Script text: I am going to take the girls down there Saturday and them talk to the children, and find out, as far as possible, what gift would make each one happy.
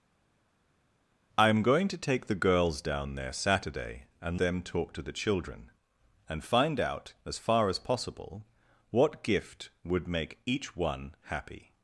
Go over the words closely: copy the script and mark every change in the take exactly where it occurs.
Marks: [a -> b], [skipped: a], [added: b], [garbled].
I am going to take the girls down there Saturday and them talk to the children, and find out, as far as possible, what gift would make each one happy.